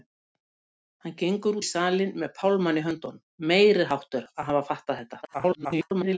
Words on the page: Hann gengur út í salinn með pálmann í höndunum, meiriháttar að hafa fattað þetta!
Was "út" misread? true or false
true